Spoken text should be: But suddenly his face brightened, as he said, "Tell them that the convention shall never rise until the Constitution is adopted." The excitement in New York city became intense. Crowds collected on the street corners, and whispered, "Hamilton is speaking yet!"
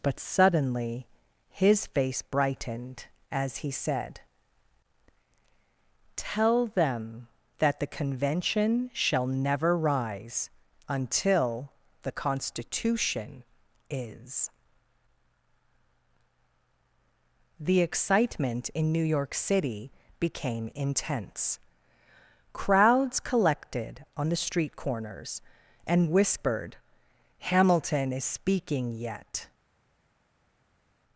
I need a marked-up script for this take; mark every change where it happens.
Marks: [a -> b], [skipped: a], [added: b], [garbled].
But suddenly his face brightened, as he said, "Tell them that the convention shall never rise until the Constitution is [skipped: adopted."] The excitement in New York city became intense. Crowds collected on the street corners, and whispered, "Hamilton is speaking yet!"